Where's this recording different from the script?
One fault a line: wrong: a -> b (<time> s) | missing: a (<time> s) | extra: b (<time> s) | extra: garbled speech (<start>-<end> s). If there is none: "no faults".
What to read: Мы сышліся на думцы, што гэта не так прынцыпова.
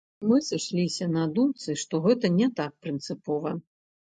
no faults